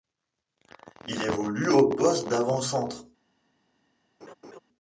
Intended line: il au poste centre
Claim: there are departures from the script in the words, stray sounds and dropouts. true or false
true